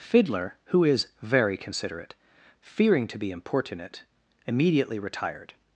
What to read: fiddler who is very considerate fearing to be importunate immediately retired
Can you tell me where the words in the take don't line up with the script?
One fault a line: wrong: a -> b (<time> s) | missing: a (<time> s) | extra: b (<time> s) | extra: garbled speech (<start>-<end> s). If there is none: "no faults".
no faults